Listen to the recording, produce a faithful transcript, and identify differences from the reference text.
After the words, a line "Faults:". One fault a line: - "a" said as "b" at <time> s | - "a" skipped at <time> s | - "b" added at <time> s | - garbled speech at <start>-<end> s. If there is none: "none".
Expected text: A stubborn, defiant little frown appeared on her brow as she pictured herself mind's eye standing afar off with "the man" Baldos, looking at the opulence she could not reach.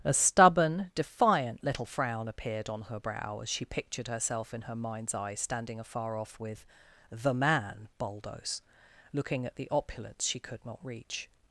A stubborn, defiant little frown appeared on her brow as she pictured herself in her mind's eye standing afar off with "the man" Baldos, looking at the opulence she could not reach.
Faults:
- "in her" added at 4.5 s